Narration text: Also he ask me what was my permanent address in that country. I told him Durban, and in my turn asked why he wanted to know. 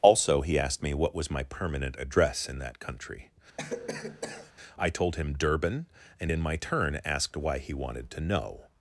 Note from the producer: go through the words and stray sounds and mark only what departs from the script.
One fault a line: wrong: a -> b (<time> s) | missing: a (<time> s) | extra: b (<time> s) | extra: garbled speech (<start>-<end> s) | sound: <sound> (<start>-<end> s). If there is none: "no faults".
wrong: ask -> asked (0.6 s)
sound: cough (3.6-4.5 s)